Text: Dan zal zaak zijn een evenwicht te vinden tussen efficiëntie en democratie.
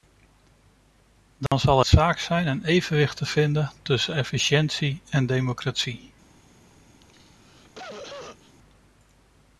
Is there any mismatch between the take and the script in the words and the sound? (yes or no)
yes